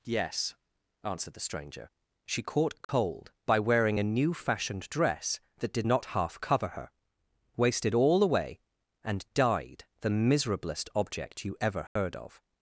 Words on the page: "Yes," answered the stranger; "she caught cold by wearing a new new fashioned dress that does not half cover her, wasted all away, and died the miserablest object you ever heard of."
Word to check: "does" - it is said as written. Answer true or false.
false